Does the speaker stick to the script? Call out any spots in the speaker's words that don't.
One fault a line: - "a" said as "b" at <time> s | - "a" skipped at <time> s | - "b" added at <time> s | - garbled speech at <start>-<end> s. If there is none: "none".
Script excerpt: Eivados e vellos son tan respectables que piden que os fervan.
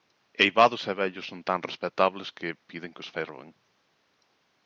none